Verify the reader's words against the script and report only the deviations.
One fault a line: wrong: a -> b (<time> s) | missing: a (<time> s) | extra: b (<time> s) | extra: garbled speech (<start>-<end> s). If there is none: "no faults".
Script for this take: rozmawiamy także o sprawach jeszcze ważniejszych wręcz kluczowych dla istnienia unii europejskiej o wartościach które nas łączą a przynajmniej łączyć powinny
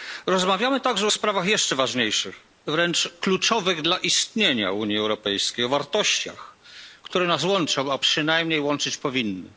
no faults